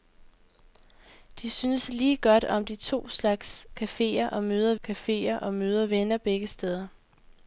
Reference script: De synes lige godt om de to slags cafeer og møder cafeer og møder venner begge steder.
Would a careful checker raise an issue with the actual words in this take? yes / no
no